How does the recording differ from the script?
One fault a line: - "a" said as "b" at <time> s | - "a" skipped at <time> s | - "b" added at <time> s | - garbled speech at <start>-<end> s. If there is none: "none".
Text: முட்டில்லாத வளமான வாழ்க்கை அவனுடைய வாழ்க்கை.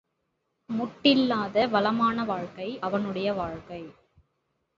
none